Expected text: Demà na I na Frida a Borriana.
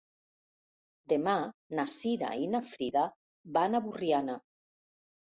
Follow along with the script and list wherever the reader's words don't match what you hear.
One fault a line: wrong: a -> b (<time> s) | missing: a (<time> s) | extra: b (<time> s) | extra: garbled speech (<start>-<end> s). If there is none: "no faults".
extra: Cira (2.0 s)
extra: van (3.6 s)